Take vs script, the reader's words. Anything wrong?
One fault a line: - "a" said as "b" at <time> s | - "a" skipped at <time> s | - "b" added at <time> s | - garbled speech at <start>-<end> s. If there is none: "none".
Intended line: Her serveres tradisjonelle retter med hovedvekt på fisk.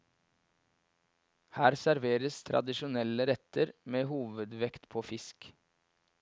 none